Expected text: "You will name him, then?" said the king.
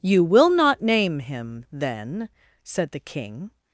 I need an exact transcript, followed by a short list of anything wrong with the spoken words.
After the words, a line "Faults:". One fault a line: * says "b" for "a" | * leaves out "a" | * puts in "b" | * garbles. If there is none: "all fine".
"You will not name him, then?" said the king.
Faults:
* puts in "not"